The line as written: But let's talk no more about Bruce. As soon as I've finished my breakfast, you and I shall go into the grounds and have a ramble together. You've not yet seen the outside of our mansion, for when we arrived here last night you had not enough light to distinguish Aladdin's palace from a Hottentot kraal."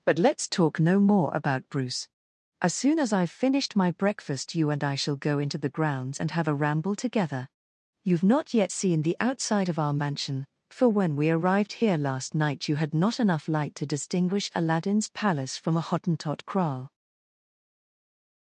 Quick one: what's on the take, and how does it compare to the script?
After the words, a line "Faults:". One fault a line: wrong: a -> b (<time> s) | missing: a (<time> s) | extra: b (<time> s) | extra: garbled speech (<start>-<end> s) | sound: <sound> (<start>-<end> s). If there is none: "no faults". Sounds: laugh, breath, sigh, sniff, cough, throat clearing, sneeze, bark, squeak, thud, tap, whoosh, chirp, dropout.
But let's talk no more about Bruce. As soon as I've finished my breakfast, you and I shall go into the grounds and have a ramble together. You've not yet seen the outside of our mansion, for when we arrived here last night you had not enough light to distinguish Aladdin's palace from a Hottentot kraal."
Faults:
no faults